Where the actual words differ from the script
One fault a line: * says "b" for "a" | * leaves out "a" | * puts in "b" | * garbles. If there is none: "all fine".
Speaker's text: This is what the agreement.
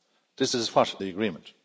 all fine